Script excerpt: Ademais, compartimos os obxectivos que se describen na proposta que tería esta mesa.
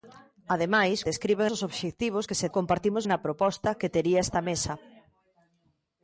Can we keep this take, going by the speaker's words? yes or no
no